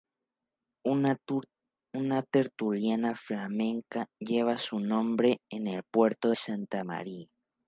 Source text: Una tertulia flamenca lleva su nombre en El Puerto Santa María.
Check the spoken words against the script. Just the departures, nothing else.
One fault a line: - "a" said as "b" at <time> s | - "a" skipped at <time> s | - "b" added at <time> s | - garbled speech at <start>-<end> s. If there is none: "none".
none